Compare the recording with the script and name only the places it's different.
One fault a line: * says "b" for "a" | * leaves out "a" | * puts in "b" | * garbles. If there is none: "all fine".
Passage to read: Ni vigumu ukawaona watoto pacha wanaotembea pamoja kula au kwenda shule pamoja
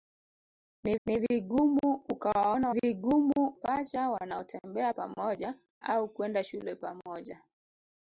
* puts in "ni"
* says "vigumu" for "watoto"
* leaves out "kula"